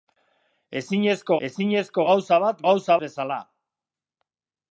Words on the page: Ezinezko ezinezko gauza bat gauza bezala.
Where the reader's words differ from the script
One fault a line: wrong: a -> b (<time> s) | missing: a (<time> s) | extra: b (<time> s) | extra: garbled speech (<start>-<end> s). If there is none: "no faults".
no faults